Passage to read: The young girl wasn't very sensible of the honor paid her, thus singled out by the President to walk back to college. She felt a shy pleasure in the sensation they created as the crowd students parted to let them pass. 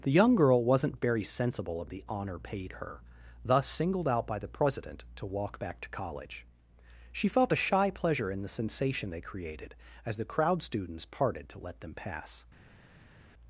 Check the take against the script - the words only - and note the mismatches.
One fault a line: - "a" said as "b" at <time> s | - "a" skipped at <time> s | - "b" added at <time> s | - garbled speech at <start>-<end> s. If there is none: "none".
none